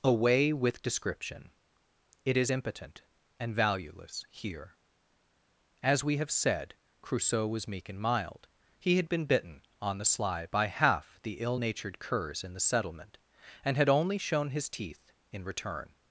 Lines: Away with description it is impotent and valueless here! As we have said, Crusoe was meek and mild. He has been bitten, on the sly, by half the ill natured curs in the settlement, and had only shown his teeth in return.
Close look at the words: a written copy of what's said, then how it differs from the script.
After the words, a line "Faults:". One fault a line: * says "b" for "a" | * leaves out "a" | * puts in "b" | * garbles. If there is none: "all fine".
Away with description it is impotent and valueless here! As we have said, Crusoe was meek and mild. He had been bitten, on the sly, by half the ill natured curs in the settlement, and had only shown his teeth in return.
Faults:
* says "had" for "has"